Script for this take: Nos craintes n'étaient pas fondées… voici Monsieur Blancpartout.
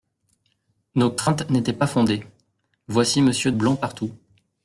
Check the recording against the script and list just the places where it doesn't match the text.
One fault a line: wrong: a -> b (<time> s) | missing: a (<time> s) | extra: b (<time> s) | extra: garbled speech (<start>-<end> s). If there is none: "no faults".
no faults